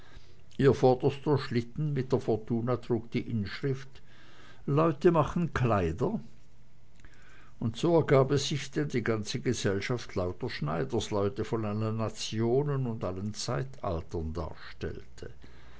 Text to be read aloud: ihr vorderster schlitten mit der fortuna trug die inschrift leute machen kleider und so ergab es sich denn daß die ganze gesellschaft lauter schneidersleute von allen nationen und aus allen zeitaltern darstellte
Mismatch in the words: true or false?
true